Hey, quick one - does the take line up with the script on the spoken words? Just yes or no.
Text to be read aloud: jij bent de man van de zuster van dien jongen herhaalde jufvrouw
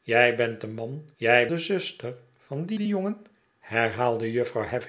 no